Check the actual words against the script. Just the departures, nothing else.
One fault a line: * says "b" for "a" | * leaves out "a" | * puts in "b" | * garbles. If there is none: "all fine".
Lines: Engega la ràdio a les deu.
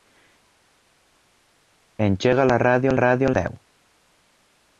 * says "ràdio" for "les"